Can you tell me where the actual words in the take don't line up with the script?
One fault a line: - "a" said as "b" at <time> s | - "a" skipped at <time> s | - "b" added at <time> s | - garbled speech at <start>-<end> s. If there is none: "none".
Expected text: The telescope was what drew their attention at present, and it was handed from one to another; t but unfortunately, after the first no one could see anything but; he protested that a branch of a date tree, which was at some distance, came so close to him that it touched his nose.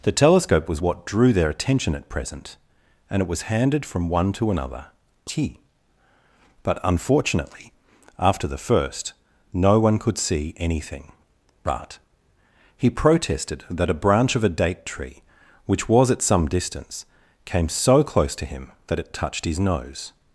none